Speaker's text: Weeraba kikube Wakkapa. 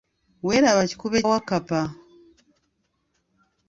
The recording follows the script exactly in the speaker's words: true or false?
true